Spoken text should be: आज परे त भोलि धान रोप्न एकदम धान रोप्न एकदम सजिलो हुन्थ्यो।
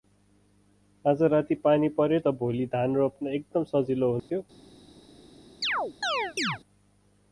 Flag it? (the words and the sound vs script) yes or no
yes